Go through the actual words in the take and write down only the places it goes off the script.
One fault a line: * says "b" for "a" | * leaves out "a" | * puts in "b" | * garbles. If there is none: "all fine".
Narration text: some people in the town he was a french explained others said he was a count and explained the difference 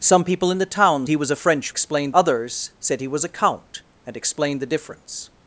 all fine